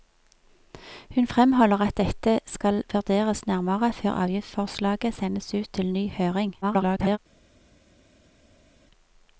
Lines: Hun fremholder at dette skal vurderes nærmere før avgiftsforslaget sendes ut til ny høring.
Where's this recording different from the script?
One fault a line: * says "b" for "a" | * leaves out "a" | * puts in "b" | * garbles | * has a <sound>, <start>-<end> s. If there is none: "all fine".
* garbles